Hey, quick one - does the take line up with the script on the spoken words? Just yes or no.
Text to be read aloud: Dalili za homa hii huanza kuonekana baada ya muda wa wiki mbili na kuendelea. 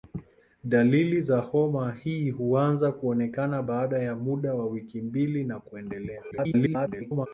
no